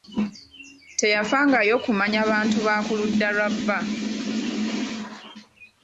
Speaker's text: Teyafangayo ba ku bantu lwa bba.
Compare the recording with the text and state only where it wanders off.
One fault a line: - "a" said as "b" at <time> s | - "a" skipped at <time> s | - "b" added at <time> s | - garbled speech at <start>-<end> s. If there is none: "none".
- "kumanya bantu" added at 1.9 s
- "bantu" said as "ludda" at 3.0 s